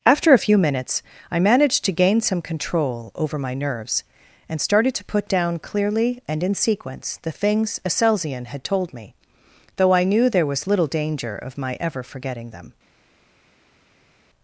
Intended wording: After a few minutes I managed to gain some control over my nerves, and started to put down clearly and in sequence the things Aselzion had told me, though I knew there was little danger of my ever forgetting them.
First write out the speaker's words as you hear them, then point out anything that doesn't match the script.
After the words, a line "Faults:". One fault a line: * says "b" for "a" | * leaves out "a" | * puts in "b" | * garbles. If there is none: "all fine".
After a few minutes I managed to gain some control over my nerves, and started to put down clearly and in sequence the things Aselzion had told me, though I knew there was little danger of my ever forgetting them.
Faults:
all fine